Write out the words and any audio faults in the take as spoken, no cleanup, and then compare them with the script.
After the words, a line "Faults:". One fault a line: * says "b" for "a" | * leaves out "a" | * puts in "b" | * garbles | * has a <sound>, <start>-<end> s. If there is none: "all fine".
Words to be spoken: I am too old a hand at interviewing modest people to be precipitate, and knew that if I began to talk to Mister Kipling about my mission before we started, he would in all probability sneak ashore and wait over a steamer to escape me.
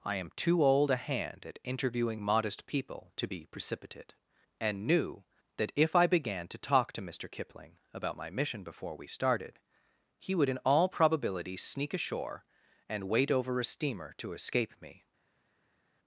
I am too old a hand at interviewing modest people to be precipitate, and knew that if I began to talk to Mister Kipling about my mission before we started, he would in all probability sneak ashore and wait over a steamer to escape me.
Faults:
all fine